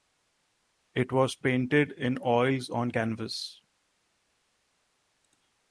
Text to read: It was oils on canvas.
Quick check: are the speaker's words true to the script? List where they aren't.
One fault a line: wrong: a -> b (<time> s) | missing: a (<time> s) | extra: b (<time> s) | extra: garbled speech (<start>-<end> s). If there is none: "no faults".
extra: painted in (1.4 s)